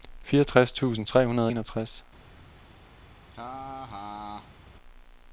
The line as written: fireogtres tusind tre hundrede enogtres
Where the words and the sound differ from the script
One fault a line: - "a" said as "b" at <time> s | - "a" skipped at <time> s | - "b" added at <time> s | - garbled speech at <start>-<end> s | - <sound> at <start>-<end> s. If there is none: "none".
- laugh at 3.3-4.6 s